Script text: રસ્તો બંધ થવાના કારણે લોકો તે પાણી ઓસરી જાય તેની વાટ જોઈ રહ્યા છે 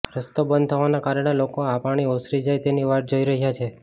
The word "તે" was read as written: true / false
false